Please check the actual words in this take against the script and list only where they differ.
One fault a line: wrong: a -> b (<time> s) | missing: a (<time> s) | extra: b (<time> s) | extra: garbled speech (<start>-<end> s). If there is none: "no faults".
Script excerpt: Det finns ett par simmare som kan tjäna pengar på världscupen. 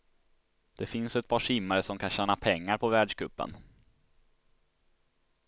no faults